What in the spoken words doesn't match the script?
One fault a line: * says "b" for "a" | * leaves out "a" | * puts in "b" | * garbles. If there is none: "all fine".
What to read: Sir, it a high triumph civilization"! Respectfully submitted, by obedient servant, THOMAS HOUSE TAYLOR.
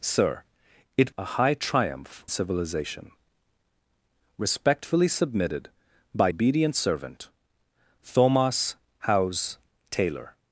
all fine